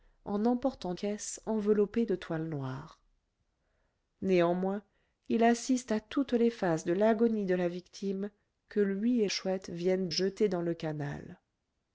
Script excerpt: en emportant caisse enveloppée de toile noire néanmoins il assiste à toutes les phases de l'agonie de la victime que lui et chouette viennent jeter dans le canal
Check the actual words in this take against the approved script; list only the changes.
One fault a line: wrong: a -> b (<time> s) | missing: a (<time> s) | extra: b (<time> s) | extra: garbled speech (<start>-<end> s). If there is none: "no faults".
no faults